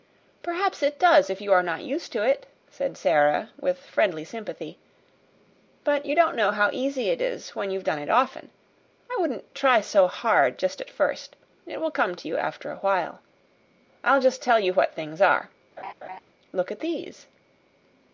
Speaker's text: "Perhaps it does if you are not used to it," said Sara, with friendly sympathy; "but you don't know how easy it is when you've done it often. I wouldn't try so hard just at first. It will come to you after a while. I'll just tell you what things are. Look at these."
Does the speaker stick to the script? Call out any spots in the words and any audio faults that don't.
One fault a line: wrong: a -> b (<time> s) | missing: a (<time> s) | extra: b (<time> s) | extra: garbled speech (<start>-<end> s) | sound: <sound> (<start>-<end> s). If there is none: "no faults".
sound: laugh (15.8-16.2 s)